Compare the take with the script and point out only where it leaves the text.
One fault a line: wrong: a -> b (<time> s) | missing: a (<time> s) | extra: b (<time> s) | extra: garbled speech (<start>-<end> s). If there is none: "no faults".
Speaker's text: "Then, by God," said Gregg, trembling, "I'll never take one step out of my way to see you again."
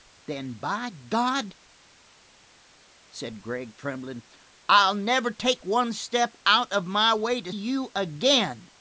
missing: see (7.5 s)